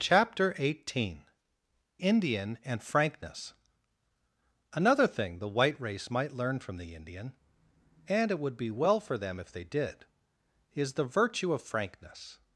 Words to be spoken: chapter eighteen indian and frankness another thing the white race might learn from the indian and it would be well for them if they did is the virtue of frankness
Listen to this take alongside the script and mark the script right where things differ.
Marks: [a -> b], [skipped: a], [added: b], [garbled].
chapter eighteen indian and frankness another thing the white race might learn from the indian and it would be well for them if they did is the virtue of frankness